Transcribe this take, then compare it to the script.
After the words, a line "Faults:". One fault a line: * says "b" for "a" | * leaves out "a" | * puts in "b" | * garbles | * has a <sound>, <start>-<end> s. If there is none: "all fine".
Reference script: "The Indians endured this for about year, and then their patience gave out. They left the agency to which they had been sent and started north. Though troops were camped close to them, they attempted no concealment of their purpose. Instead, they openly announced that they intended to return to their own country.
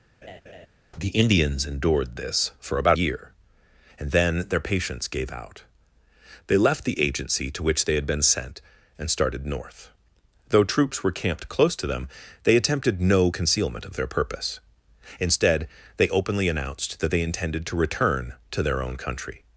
"The Indians endured this for about year, and then their patience gave out. They left the agency to which they had been sent and started north. Though troops were camped close to them, they attempted no concealment of their purpose. Instead, they openly announced that they intended to return to their own country.
Faults:
* has a laugh, 0.2-0.7 s